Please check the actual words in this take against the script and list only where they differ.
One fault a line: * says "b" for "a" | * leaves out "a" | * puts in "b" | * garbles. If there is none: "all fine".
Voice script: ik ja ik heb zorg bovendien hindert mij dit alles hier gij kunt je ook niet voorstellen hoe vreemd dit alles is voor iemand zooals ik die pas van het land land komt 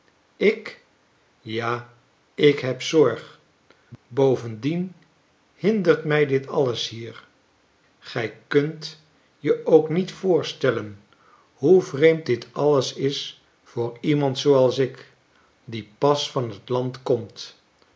* leaves out "land"